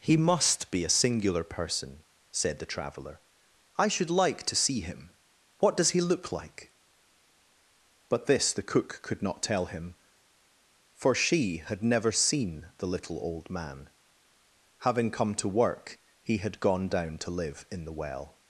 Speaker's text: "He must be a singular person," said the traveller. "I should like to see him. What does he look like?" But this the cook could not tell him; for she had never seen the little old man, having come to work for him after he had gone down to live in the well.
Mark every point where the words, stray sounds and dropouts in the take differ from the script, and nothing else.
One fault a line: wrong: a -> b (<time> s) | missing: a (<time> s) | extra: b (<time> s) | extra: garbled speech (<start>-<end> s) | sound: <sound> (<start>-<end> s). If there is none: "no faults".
missing: for him after (16.0 s)